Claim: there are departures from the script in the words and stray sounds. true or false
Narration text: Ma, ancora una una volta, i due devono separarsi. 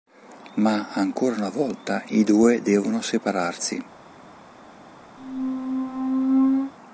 true